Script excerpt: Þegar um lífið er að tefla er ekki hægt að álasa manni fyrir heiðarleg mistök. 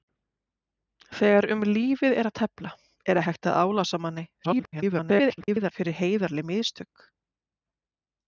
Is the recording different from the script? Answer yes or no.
yes